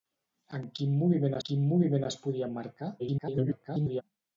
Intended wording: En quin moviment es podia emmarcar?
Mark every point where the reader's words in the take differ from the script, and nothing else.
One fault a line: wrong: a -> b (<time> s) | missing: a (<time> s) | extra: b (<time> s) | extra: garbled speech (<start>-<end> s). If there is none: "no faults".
extra: quin moviment (1.5 s)
extra: garbled speech (3.0-4.0 s)